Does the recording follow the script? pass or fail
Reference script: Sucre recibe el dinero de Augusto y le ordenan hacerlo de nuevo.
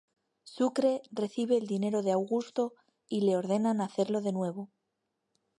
pass